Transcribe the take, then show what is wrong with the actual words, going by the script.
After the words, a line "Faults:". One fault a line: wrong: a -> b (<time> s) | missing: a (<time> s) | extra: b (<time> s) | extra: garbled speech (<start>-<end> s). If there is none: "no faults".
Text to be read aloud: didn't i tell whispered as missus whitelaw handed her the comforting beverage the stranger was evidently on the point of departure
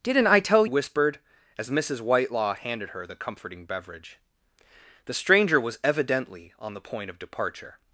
didn't i tell whispered as missus whitelaw handed her the comforting beverage the stranger was evidently on the point of departure
Faults:
no faults